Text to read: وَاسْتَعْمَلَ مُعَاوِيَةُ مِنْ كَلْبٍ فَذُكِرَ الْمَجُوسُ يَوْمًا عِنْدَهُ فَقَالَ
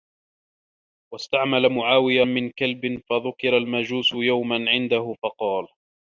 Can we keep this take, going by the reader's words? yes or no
yes